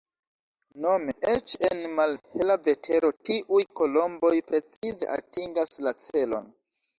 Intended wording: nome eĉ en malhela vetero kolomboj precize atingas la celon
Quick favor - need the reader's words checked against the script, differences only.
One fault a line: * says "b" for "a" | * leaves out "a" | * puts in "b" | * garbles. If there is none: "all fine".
* puts in "tiuj"